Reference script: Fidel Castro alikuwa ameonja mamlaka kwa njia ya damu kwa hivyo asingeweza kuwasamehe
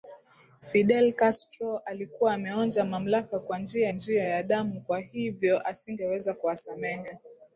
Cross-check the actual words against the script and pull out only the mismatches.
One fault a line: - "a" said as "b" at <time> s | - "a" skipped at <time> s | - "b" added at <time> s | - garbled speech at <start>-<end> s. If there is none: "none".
- "njia" added at 3.9 s